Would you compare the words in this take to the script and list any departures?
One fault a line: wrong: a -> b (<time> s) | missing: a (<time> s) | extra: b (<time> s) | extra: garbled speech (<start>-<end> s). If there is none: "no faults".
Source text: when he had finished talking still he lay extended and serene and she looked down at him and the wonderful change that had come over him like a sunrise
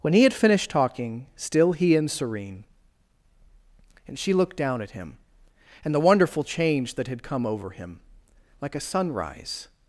missing: lay extended (1.9 s)